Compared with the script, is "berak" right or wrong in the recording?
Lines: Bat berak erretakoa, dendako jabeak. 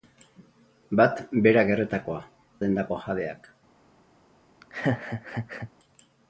right